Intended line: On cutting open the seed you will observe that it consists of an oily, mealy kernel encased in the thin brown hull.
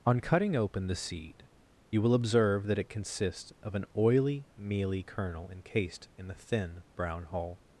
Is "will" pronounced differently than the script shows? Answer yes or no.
no